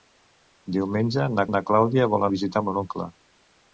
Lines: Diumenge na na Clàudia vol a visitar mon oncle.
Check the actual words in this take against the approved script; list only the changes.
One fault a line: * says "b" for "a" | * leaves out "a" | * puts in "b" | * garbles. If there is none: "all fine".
all fine